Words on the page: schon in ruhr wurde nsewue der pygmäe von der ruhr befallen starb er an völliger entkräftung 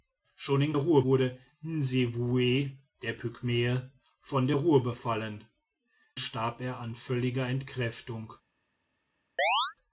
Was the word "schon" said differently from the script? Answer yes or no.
no